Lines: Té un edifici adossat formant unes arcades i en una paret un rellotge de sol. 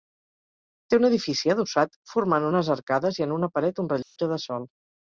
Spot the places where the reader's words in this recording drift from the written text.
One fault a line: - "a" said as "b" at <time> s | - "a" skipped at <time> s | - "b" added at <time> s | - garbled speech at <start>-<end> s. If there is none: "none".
none